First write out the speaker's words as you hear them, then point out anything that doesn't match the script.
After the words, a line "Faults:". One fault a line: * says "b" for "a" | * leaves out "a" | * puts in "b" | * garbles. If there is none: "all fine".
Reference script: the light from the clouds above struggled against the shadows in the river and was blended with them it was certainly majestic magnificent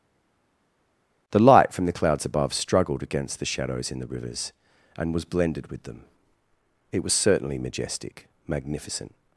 the light from the clouds above struggled against the shadows in the rivers and was blended with them it was certainly majestic magnificent
Faults:
* says "rivers" for "river"